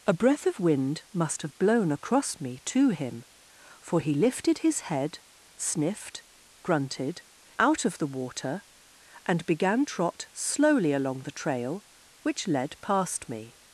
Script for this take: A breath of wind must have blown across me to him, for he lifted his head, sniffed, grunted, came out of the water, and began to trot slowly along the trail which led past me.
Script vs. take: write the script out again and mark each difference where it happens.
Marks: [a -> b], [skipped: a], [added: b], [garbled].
A breath of wind must have blown across me to him, for he lifted his head, sniffed, grunted, [skipped: came] out of the water, and began [skipped: to] trot slowly along the trail which led past me.